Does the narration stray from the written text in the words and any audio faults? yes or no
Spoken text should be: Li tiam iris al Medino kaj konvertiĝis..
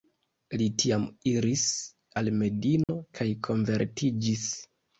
yes